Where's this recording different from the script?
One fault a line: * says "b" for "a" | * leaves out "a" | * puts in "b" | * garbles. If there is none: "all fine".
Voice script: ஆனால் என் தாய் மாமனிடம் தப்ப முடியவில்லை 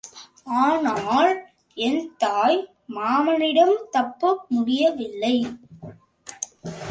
all fine